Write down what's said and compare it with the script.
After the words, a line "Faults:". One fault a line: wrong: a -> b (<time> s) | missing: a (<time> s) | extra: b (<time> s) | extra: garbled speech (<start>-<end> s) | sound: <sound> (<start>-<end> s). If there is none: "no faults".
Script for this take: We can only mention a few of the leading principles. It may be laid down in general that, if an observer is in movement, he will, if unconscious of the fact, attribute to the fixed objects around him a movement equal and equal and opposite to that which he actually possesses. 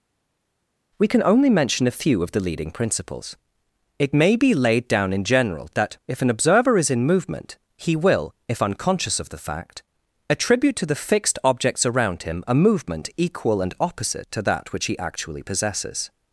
We can only mention a few of the leading principles. It may be laid down in general that, if an observer is in movement, he will, if unconscious of the fact, attribute to the fixed objects around him a movement equal and opposite to that which he actually possesses.
Faults:
missing: equal and (13.7 s)